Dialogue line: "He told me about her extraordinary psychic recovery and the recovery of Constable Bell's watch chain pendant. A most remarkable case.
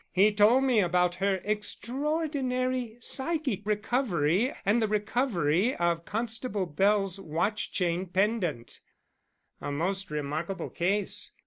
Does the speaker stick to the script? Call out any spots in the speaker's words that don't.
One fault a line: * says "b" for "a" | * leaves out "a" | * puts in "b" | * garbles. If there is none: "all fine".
all fine